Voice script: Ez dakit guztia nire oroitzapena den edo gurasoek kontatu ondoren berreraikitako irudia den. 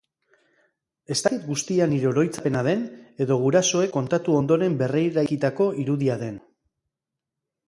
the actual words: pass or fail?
pass